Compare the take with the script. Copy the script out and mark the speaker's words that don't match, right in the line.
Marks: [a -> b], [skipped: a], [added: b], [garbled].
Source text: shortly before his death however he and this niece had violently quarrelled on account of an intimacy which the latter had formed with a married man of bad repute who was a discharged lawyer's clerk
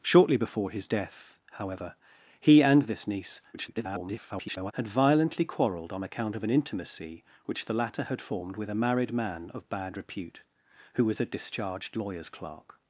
shortly before his death however he and this niece [garbled] had violently quarrelled on account of an intimacy which the latter had formed with a married man of bad repute who was a discharged lawyer's clerk